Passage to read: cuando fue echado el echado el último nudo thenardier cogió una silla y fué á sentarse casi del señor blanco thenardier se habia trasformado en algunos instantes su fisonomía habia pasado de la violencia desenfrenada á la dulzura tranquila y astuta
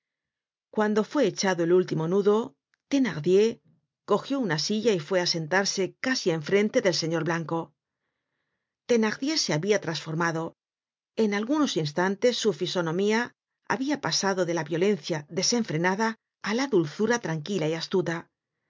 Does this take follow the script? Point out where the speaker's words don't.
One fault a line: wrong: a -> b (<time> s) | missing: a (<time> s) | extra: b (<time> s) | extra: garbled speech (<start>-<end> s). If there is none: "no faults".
missing: echado el (1.7 s)
extra: en frente (6.3 s)